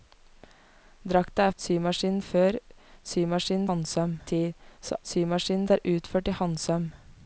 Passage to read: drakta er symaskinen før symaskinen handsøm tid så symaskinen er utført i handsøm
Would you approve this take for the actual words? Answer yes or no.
yes